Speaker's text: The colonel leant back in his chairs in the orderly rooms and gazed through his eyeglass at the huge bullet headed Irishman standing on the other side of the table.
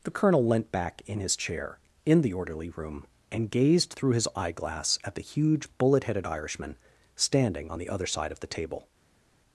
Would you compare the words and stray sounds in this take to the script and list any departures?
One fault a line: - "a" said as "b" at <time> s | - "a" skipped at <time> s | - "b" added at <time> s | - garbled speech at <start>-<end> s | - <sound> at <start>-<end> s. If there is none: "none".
- "chairs" said as "chair" at 1.4 s
- "rooms" said as "room" at 2.7 s